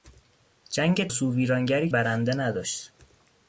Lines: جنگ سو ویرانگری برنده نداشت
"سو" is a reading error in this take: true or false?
false